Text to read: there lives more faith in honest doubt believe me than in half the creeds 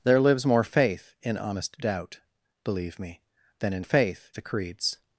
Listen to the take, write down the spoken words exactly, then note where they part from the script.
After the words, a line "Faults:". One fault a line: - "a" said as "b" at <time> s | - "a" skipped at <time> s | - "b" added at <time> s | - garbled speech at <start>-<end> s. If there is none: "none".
there lives more faith in honest doubt believe me than in faith the creeds
Faults:
- "half" said as "faith" at 3.8 s